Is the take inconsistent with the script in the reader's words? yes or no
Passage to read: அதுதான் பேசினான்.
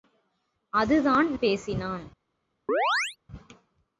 no